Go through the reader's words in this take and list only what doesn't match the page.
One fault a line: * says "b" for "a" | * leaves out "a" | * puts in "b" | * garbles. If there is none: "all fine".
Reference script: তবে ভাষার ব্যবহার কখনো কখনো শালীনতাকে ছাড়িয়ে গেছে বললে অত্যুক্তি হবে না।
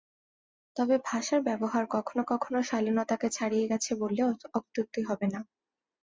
all fine